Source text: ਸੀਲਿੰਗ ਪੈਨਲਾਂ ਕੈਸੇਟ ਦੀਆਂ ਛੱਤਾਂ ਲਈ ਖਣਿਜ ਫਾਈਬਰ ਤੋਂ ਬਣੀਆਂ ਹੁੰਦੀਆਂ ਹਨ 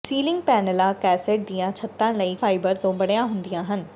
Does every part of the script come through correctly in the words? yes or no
no